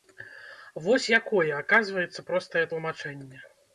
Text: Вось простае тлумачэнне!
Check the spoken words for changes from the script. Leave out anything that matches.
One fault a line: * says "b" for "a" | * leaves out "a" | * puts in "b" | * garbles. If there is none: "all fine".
* puts in "якое аказваецца"